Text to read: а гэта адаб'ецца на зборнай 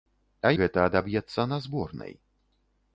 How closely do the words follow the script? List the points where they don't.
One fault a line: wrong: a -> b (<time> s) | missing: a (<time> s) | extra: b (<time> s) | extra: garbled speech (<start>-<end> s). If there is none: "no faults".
no faults